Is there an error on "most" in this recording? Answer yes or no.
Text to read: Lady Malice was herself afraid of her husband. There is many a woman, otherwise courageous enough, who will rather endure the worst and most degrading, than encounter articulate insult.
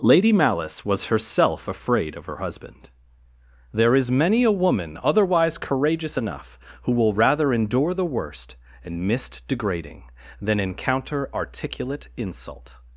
yes